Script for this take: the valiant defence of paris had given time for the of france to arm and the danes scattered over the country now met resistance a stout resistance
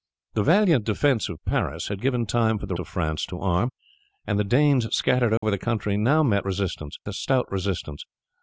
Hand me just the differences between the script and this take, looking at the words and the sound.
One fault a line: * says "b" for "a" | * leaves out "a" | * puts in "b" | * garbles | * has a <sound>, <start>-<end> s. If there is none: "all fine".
* has a dropout, 5.4-5.4 s